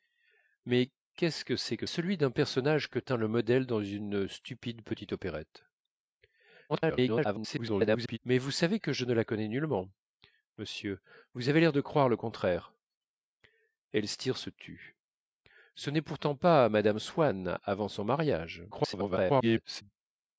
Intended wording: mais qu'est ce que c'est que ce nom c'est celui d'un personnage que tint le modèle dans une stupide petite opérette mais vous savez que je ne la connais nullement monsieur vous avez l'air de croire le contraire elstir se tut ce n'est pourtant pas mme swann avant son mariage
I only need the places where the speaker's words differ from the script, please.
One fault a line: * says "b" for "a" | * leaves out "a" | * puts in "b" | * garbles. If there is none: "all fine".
* leaves out "ce nom c'est"
* garbles
* garbles